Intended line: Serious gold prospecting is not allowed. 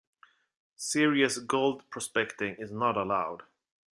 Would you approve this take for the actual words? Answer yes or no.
yes